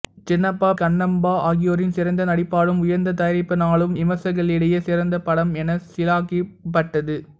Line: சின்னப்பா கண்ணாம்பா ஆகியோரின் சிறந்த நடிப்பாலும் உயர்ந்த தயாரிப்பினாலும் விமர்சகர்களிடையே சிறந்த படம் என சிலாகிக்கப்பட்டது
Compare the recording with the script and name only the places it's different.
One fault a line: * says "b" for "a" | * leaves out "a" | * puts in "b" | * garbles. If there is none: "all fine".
all fine